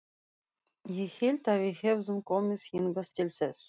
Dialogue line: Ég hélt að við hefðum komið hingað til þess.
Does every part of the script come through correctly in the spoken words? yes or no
yes